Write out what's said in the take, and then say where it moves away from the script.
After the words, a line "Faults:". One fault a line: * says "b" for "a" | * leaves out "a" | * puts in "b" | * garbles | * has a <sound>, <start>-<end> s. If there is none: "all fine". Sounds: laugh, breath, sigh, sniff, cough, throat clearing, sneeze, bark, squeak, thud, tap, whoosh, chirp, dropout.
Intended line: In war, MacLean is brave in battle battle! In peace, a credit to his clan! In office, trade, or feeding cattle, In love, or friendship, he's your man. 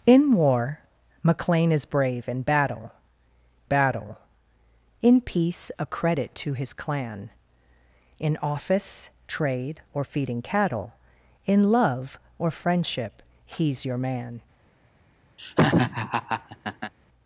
In war, MacLean is brave in battle battle! In peace, a credit to his clan! In office, trade, or feeding cattle, In love, or friendship, he's your man.
Faults:
* has a laugh, 15.4-16.9 s